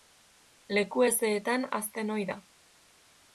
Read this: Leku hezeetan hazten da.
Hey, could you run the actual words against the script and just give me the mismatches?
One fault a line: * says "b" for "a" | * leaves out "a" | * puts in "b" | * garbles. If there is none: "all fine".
* puts in "ohi"